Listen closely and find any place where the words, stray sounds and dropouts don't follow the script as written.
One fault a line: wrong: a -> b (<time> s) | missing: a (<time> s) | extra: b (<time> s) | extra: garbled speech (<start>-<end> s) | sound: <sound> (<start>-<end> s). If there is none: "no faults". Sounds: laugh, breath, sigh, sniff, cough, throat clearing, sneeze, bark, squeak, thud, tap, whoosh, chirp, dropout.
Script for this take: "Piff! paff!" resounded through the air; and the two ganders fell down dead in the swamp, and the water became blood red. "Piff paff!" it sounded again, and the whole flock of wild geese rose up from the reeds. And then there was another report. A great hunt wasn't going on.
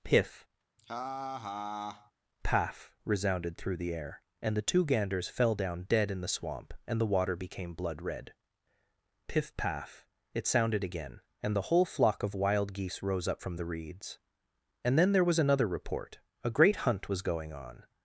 sound: laugh (0.8-2.1 s)
wrong: wasn't -> was (17.1 s)